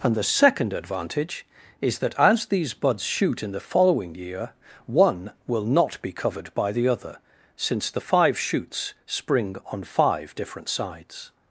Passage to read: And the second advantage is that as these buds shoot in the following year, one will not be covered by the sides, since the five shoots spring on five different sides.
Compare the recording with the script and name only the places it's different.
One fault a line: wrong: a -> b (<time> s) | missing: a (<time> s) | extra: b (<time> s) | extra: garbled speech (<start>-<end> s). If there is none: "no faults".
wrong: sides -> other (6.9 s)